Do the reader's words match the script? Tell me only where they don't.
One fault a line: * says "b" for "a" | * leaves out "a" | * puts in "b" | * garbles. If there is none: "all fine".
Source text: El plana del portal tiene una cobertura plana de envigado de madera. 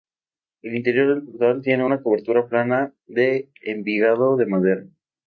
* says "interior" for "plana"